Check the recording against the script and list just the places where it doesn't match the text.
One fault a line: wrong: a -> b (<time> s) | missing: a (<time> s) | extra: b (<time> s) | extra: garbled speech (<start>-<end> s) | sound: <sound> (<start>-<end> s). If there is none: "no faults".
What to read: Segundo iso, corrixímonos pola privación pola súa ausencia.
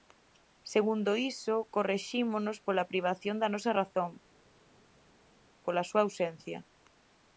extra: da nosa razón (3.4 s)